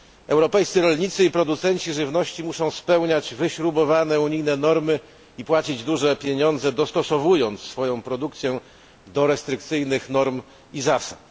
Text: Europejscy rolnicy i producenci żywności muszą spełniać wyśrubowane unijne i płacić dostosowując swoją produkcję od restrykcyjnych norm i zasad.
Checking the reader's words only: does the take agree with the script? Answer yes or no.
no